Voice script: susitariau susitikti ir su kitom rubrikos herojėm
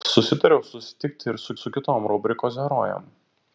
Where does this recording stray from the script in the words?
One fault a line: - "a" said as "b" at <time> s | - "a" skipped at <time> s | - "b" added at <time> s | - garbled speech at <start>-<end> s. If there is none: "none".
- "su" added at 1.6 s